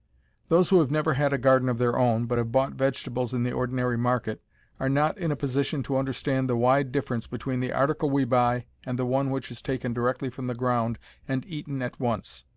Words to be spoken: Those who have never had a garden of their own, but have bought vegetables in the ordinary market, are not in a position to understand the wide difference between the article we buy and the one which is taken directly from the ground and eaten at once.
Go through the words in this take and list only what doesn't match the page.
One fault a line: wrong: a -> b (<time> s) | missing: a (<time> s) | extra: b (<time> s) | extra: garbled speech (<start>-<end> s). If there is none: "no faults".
no faults